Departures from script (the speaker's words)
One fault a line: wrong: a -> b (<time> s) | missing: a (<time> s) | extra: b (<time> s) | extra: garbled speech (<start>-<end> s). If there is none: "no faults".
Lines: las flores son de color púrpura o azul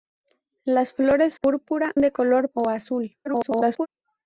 wrong: son -> púrpura (1.3 s)
missing: púrpura (2.5 s)
extra: garbled speech (3.2-3.9 s)